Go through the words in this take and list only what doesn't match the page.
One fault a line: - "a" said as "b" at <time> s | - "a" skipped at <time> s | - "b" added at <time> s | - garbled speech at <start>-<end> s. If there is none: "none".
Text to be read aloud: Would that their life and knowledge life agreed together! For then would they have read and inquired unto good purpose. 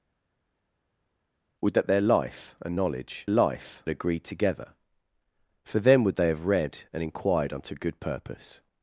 none